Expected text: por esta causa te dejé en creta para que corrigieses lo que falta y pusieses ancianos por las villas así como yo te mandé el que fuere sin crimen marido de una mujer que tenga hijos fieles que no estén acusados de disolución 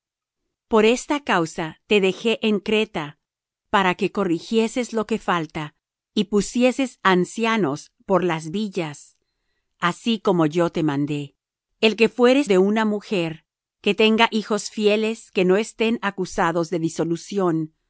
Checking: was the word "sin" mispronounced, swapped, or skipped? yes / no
yes